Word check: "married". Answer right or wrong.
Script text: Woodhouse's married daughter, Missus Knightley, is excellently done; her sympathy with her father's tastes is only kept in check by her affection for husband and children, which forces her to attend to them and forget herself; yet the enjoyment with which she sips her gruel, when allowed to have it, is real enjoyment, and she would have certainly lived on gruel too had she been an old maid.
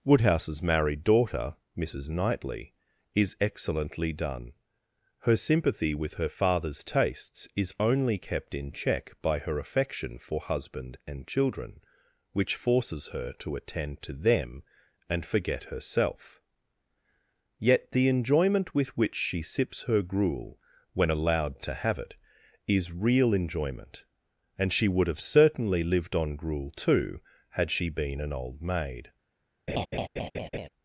right